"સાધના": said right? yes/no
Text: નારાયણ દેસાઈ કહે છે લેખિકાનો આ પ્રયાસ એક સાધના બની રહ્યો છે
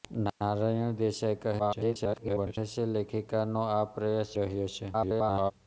no